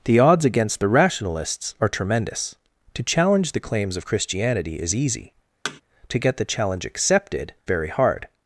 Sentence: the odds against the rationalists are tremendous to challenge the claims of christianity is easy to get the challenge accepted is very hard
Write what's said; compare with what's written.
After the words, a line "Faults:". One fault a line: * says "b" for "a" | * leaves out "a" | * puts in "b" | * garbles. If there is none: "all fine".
the odds against the rationalists are tremendous to challenge the claims of christianity is easy to get the challenge accepted very hard
Faults:
* leaves out "is"